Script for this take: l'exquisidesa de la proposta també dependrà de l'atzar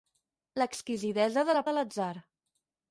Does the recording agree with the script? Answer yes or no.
no